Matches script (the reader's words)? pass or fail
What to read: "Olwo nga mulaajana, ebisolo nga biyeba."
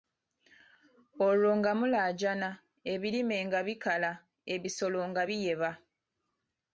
fail